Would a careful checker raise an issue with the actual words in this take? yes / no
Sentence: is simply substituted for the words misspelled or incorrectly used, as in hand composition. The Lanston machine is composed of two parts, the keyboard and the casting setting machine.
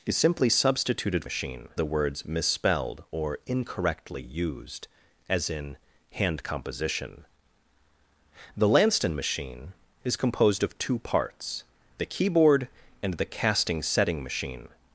yes